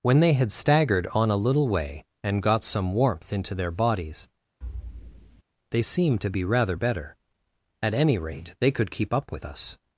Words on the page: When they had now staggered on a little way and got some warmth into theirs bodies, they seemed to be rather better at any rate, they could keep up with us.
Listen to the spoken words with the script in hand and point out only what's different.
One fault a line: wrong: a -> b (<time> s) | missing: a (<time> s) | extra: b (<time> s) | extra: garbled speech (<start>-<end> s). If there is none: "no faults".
missing: now (0.5 s)
wrong: theirs -> their (3.5 s)